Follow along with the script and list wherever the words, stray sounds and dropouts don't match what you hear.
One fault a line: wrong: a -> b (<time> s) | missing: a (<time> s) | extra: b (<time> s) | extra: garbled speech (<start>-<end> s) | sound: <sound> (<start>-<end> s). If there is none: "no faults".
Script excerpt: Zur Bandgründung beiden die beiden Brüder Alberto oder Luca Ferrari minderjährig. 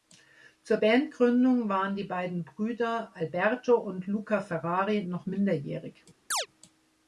wrong: beiden -> waren (1.7 s)
wrong: oder -> und (3.7 s)
extra: noch (5.0 s)
sound: chirp (6.3-6.5 s)